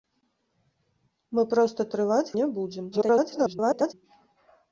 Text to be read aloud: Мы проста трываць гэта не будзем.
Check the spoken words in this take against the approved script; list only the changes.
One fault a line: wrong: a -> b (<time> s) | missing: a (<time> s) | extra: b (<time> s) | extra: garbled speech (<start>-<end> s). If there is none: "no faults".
missing: гэта (2.3 s)
extra: garbled speech (2.9-3.9 s)